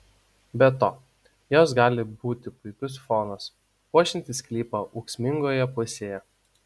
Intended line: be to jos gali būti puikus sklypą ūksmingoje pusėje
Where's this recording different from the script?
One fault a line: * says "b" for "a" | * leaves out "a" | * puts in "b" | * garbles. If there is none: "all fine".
* puts in "fonas puošiantis"